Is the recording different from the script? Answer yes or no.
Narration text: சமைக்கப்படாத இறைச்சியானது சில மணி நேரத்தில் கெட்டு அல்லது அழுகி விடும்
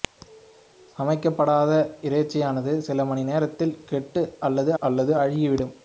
yes